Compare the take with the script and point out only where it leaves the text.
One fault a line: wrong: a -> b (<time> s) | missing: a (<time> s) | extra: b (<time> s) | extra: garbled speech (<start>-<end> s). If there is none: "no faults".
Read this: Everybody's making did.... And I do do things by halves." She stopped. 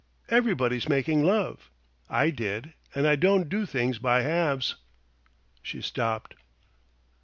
extra: love I (1.2 s)
wrong: do -> don't (3.1 s)